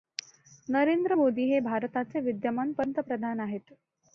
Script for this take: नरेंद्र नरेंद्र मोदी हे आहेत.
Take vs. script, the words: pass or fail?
fail